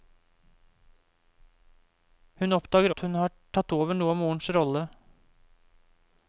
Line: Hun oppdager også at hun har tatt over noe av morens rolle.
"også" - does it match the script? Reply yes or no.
no